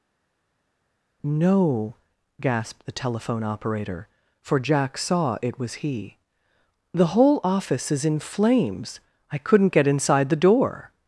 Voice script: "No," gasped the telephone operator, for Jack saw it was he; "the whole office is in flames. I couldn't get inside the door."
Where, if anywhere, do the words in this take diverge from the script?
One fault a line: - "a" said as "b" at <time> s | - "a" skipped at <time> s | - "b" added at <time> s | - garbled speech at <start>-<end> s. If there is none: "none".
none